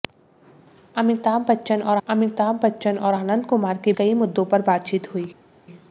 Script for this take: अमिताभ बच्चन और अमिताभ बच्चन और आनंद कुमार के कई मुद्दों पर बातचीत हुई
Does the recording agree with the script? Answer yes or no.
yes